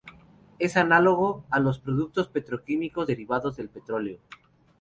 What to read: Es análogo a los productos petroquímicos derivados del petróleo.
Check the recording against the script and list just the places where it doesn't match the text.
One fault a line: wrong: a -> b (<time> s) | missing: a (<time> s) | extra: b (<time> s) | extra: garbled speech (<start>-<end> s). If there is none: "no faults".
no faults